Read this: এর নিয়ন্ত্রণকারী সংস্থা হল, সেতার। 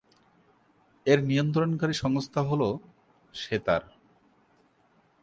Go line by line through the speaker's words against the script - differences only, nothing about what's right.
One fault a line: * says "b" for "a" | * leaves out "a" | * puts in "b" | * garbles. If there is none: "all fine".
all fine